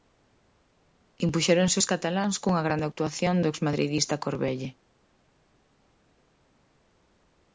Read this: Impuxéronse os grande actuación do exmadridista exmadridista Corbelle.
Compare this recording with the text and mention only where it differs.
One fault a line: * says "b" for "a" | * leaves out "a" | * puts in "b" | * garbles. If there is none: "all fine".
* puts in "cataláns cunha"
* leaves out "exmadridista"